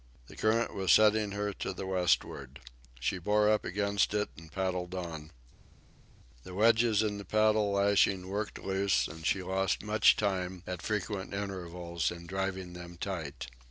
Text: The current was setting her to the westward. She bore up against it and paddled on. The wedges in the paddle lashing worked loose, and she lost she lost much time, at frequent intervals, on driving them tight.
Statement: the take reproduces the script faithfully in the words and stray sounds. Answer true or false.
false